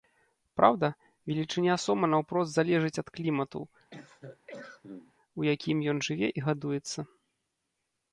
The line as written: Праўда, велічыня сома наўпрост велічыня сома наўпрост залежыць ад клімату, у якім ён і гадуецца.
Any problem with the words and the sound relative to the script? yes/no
yes